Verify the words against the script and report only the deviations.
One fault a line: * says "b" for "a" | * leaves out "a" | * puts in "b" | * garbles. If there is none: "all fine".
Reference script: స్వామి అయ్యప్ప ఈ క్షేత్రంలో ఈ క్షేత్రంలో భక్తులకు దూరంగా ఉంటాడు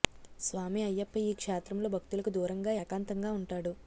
* leaves out "ఈ క్షేత్రంలో"
* puts in "ఏకాంతంగా"